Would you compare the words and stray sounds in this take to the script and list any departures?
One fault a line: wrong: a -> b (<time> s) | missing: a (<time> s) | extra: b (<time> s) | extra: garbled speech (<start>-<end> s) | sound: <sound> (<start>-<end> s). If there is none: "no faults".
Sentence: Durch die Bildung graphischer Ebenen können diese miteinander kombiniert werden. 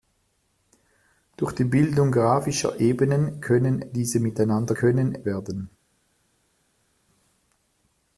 wrong: kombiniert -> können (4.7 s)